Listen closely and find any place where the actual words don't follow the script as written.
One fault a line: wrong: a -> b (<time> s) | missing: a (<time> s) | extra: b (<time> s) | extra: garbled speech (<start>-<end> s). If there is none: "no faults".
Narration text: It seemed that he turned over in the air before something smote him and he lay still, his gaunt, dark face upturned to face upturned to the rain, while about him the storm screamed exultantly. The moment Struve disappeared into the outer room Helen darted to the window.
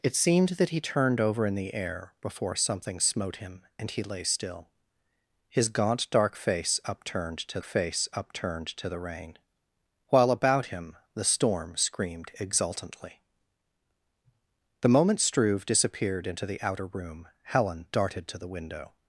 no faults